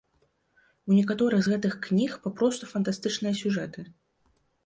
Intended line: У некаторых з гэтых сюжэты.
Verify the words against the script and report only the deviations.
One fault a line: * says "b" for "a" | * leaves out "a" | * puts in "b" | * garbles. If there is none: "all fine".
* puts in "кніг папросту фантастычныя"